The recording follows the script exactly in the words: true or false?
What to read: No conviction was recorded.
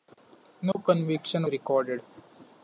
false